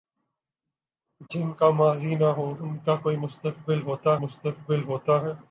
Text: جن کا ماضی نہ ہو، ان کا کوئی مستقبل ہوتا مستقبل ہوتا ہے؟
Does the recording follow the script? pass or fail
pass